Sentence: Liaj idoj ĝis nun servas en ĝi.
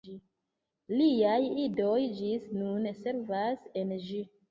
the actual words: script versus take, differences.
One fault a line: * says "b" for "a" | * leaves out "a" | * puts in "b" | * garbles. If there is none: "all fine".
all fine